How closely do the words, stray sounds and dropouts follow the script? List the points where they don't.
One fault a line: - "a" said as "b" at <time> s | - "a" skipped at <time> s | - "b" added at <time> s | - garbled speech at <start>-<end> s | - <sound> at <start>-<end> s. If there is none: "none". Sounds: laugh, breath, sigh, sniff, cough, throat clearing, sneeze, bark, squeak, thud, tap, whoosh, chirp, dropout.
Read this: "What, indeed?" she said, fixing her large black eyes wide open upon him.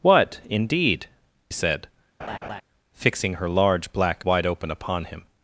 - "she" skipped at 1.1 s
- laugh at 2.2-2.6 s
- "eyes" skipped at 4.3 s